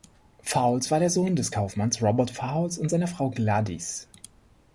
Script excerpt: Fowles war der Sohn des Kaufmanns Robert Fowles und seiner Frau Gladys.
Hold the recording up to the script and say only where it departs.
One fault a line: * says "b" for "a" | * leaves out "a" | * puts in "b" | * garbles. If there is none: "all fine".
all fine